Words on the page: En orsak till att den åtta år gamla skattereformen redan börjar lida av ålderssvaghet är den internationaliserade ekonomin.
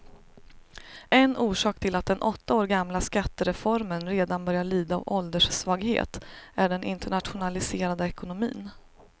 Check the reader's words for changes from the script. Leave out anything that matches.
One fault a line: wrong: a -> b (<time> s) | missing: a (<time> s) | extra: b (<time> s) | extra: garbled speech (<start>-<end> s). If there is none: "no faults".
no faults